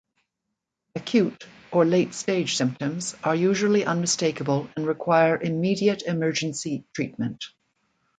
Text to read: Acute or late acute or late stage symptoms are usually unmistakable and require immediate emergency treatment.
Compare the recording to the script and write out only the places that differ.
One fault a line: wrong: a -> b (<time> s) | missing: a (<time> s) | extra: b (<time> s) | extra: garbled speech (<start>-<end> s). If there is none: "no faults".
missing: acute or late (2.1 s)